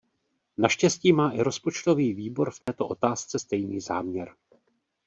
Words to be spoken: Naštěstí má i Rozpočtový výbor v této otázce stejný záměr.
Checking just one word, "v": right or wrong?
right